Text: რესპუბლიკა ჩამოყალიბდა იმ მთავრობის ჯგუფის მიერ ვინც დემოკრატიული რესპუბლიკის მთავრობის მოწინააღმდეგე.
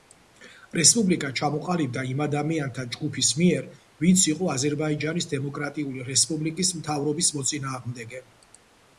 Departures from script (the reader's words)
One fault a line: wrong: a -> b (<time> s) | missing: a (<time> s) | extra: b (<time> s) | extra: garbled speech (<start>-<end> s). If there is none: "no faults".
wrong: მთავრობის -> ადამიანთა (2.2 s)
extra: იყო აზერბაიჯანის (4.3 s)